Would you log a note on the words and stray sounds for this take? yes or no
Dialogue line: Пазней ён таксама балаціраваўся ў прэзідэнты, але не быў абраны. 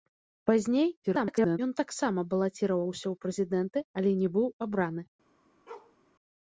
yes